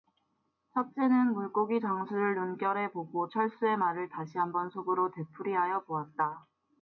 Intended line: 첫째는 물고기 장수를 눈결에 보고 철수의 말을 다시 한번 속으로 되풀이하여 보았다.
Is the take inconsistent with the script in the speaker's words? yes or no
no